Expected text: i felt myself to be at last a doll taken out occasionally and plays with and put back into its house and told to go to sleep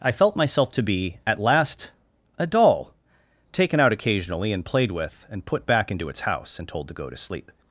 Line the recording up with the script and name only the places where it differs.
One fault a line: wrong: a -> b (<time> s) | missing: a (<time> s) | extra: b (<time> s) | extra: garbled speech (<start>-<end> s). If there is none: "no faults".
wrong: plays -> played (4.7 s)